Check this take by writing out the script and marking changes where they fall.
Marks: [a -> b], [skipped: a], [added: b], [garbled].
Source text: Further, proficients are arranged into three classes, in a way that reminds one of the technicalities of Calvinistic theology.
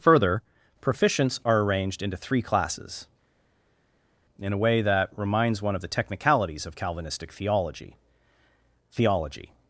Further, proficients are arranged into three classes, in a way that reminds one of the technicalities of Calvinistic theology. [added: theology]